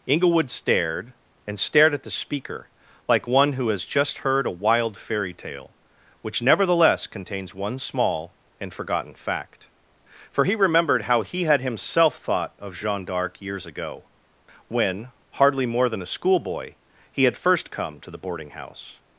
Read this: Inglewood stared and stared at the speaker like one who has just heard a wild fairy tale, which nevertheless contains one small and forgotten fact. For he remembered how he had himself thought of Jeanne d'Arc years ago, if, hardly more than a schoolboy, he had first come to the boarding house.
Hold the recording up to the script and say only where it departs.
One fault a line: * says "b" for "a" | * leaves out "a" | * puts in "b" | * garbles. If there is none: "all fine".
* says "when" for "if"